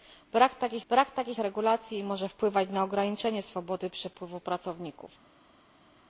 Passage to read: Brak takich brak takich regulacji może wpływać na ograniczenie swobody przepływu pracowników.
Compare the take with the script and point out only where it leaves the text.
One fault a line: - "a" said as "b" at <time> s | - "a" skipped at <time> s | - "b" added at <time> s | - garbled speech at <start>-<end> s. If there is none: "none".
none